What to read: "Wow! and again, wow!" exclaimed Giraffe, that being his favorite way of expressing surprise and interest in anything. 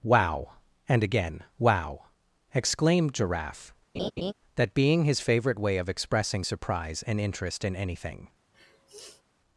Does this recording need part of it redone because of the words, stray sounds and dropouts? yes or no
yes